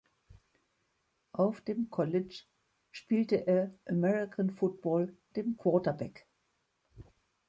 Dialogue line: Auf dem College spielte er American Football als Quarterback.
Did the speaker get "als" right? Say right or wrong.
wrong